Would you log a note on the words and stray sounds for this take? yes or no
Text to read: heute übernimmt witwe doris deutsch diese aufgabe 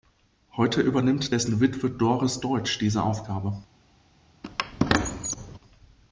yes